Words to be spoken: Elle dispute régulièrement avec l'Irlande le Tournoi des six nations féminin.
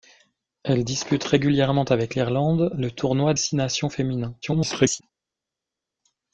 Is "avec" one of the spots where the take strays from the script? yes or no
no